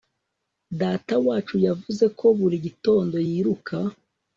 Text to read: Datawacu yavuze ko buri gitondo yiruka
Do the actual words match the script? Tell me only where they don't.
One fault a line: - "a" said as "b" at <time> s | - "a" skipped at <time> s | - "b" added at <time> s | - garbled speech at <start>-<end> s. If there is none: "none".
none